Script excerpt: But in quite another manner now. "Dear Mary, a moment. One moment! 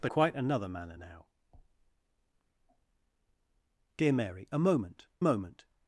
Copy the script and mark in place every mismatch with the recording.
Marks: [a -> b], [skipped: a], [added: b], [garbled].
But [skipped: in] quite another manner now. "Dear Mary, a moment. [skipped: One] moment!